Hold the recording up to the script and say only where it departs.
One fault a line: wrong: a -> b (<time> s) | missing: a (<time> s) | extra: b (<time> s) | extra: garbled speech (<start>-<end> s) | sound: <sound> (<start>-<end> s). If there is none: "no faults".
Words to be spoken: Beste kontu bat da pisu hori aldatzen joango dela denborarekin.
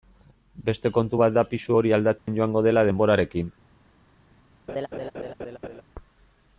sound: dropout (2.2-2.3 s)
sound: laugh (4.7-5.8 s)